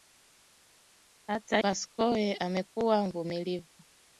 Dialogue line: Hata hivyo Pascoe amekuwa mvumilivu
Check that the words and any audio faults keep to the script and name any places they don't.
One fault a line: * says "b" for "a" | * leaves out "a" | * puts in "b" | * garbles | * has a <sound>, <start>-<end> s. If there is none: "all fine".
* leaves out "hivyo"